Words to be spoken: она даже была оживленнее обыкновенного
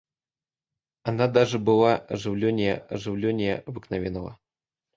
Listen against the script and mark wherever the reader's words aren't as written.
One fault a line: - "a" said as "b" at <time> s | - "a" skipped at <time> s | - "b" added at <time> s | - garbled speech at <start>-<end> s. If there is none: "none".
- "оживленнее" added at 2.8 s